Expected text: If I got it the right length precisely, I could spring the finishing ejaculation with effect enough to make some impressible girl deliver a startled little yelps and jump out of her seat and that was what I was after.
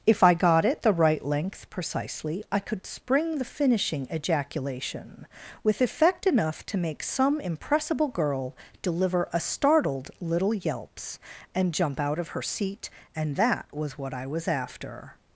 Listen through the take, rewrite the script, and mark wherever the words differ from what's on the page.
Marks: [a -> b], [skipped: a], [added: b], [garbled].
If I got it the right length precisely, I could spring the finishing ejaculation with effect enough to make some impressible girl deliver a startled little yelps and jump out of her seat and that was what I was after.